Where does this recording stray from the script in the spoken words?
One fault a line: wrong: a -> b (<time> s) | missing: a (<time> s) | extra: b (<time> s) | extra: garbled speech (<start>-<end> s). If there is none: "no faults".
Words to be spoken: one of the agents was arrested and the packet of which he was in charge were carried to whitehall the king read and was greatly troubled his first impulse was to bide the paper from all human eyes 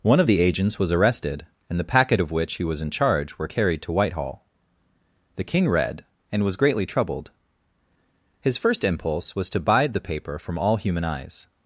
no faults